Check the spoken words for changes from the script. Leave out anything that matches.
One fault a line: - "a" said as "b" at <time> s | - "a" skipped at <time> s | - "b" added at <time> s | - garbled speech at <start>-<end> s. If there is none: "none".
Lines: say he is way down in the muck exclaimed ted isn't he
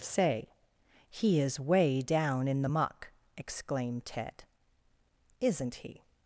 none